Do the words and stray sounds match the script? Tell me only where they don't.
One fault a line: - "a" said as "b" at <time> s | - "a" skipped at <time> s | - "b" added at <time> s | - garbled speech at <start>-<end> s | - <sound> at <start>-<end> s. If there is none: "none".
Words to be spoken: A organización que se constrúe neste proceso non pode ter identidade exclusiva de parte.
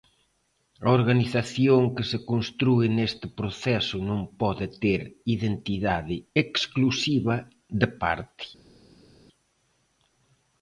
none